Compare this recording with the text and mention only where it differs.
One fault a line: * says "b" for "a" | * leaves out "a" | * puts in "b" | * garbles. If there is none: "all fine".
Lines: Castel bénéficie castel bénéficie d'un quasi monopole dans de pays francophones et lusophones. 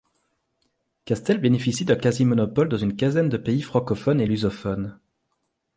* leaves out "castel bénéficie"
* puts in "une quinzaine"